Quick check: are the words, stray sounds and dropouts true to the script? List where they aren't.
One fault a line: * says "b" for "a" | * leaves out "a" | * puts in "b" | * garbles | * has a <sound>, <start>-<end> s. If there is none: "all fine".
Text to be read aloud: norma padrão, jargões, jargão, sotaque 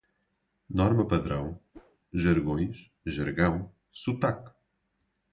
* has a whoosh, 1.7-2.0 s